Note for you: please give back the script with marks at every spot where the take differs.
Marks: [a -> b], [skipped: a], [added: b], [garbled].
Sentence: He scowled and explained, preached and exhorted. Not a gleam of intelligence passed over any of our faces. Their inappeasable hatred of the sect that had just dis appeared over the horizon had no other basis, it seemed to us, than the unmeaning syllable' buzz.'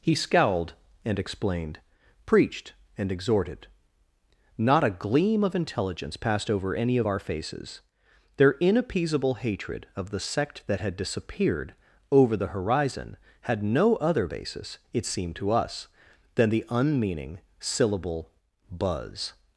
He scowled and explained, preached and exhorted. Not a gleam of intelligence passed over any of our faces. Their inappeasable hatred of the sect that had [just dis appeared -> disappeared] over the horizon had no other basis, it seemed to us, than the unmeaning syllable' buzz.'